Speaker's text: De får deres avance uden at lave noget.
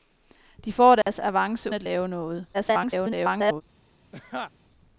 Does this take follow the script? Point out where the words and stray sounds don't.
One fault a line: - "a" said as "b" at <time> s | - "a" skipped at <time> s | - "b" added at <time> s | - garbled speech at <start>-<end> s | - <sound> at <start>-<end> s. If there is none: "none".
- dropout at 1.0-1.1 s
- "uden" skipped at 1.7 s
- garbled speech at 2.5-3.6 s
- laugh at 4.1-4.5 s